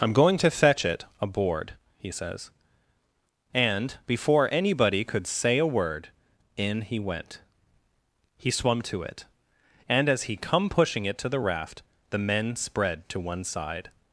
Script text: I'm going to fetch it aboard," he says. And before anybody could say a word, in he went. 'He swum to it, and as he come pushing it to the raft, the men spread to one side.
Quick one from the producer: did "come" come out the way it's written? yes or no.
yes